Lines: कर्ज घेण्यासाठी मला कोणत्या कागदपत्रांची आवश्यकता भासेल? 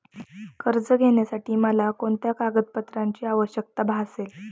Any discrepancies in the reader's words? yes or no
no